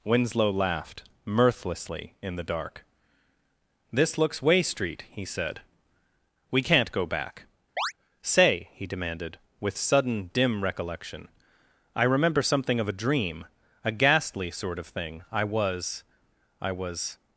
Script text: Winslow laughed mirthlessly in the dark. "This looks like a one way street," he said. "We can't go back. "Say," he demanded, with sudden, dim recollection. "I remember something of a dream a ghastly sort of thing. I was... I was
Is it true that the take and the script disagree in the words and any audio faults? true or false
true